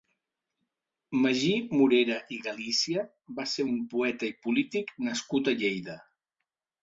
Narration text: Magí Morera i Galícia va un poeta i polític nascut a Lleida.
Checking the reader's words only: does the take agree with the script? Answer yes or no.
no